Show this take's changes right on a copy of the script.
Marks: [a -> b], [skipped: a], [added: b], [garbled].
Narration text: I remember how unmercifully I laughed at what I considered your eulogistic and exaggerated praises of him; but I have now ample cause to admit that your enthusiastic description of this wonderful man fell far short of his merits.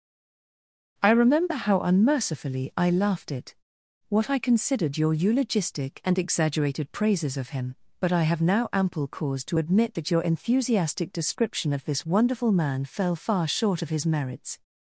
I remember how unmercifully I laughed [at -> it] what I considered your eulogistic and exaggerated praises of him; but I have now ample cause to admit that your enthusiastic description of this wonderful man fell far short of his merits.